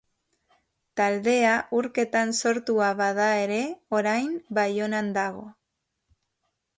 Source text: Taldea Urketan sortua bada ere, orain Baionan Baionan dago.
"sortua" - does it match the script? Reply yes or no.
yes